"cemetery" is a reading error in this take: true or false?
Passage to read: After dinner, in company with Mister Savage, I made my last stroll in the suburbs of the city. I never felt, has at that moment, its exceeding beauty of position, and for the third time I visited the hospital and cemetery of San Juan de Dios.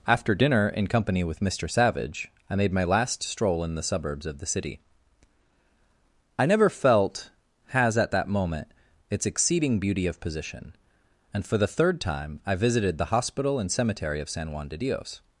false